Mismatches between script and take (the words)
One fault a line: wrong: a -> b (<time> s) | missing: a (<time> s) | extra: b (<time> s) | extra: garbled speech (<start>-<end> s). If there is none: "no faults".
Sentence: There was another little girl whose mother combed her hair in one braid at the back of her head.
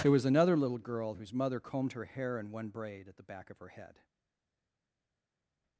no faults